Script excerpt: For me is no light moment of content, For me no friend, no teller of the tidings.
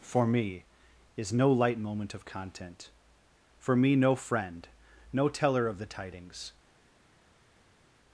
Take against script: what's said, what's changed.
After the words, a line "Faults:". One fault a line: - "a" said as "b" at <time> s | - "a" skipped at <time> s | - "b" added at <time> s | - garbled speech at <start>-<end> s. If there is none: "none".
For me is no light moment of content, For me no friend, no teller of the tidings.
Faults:
none